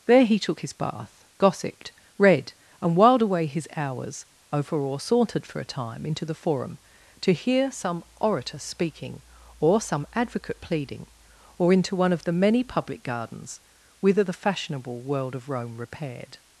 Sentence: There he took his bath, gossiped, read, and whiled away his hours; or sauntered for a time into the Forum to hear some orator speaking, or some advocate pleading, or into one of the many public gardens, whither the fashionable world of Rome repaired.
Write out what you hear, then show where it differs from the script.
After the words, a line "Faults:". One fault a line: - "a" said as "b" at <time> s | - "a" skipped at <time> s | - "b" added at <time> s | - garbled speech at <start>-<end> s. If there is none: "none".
There he took his bath, gossiped, read, and whiled away his hours; over or sauntered for a time into the Forum to hear some orator speaking, or some advocate pleading, or into one of the many public gardens, whither the fashionable world of Rome repaired.
Faults:
- "over" added at 4.5 s